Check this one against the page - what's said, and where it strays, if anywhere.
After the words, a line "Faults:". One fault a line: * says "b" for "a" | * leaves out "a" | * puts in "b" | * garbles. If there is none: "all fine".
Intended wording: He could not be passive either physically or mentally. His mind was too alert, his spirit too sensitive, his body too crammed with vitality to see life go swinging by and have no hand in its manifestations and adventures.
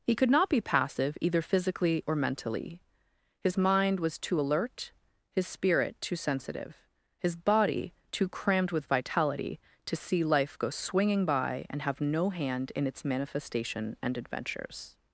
He could not be passive either physically or mentally. His mind was too alert, his spirit too sensitive, his body too crammed with vitality to see life go swinging by and have no hand in its manifestation and adventures.
Faults:
* says "manifestation" for "manifestations"